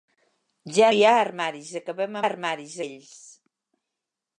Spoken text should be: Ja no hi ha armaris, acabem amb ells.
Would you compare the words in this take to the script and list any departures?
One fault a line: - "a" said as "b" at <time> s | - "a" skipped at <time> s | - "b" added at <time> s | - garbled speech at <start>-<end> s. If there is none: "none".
- "no" skipped at 0.9 s
- "amb" said as "armaris" at 2.2 s